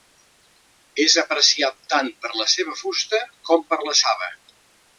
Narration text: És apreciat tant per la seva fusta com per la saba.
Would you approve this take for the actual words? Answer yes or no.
yes